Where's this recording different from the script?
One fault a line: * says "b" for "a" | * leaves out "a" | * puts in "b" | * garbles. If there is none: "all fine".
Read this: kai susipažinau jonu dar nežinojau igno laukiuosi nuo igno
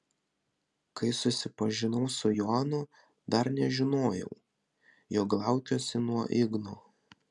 * puts in "su"
* says "jog" for "igno"